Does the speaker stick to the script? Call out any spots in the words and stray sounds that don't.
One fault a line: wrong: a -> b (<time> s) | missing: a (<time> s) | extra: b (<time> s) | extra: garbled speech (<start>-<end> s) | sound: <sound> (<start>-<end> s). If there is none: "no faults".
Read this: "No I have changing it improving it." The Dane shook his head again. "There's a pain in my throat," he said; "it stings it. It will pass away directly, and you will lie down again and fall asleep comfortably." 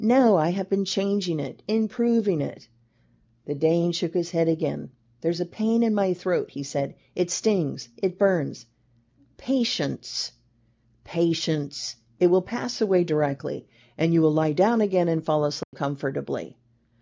extra: been (0.7 s)
extra: burns Patience patience (8.2 s)
sound: dropout (15.6-15.7 s)